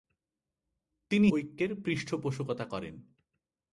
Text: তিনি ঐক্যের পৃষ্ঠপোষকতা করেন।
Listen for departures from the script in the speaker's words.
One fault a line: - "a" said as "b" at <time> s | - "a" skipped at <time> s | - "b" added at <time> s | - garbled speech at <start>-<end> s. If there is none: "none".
none